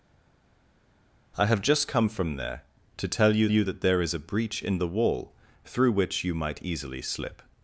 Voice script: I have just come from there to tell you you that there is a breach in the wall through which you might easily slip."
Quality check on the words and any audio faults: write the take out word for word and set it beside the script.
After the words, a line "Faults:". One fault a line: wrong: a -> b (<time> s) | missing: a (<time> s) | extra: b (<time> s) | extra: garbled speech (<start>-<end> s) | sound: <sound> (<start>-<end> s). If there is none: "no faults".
I have just come from there to tell you you that there is a breach in the wall through which you might easily slip."
Faults:
no faults